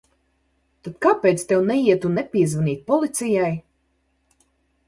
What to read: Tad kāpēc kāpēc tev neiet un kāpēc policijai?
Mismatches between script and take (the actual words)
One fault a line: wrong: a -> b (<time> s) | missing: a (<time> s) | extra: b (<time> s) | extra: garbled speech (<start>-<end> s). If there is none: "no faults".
missing: kāpēc (1.4 s)
wrong: kāpēc -> nepiezvanīt (2.2 s)